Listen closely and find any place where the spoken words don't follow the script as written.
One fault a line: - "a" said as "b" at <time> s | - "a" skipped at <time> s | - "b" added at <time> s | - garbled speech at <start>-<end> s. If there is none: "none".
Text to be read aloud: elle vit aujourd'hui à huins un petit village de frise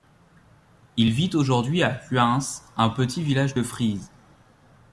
- "elle" said as "il" at 1.0 s